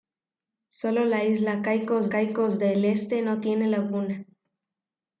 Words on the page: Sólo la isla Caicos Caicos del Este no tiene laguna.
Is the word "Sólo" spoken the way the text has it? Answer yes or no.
yes